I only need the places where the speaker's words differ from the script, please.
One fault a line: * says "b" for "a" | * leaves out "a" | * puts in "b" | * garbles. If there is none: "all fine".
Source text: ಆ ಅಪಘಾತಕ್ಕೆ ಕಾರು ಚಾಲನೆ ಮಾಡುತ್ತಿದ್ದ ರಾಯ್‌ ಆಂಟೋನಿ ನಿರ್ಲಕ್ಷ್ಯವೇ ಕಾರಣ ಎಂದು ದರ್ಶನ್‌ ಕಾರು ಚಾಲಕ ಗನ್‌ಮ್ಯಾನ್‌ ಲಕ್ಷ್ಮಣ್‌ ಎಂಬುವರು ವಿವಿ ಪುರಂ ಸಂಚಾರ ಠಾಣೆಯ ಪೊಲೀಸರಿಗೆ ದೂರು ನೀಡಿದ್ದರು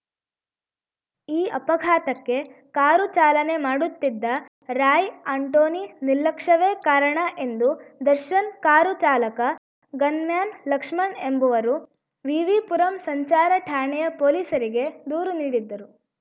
* says "ಈ" for "ಆ"